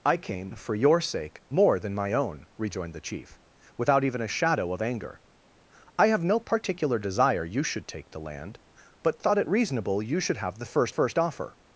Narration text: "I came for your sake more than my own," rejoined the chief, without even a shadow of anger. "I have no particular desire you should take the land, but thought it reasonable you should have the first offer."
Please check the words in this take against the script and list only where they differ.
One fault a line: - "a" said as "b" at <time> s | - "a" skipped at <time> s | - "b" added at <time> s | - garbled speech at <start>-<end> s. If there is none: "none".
- "first" added at 10.9 s